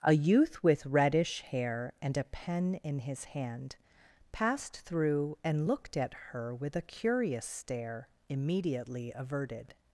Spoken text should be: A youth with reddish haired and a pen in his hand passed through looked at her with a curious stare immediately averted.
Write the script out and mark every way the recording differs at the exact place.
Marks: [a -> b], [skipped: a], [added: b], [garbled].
A youth with reddish [haired -> hair] and a pen in his hand passed through [added: and] looked at her with a curious stare immediately averted.